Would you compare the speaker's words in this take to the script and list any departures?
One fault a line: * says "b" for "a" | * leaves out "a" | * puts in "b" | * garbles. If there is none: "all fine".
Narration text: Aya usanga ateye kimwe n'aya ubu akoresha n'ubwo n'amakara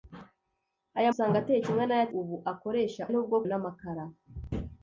all fine